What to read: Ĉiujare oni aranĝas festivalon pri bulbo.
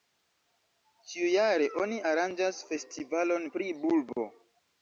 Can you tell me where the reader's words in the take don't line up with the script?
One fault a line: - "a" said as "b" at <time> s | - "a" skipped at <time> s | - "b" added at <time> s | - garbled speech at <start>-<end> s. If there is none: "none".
none